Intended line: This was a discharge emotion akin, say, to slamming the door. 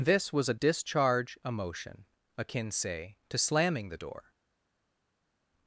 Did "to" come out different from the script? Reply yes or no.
no